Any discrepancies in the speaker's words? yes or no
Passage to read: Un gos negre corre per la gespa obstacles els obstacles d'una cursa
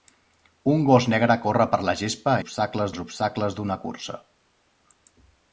no